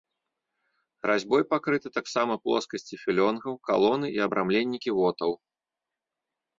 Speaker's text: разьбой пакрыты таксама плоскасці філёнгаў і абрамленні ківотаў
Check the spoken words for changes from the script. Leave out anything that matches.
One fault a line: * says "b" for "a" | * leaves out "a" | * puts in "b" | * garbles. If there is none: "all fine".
* puts in "калоны"